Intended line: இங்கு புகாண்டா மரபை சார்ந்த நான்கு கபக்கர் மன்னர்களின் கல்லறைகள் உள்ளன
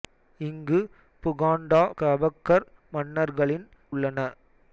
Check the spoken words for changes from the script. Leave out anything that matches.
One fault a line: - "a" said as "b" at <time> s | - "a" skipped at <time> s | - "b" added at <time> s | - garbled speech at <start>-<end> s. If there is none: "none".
- "மரபை சார்ந்த நான்கு" skipped at 1.8 s
- "கல்லறைகள்" skipped at 3.7 s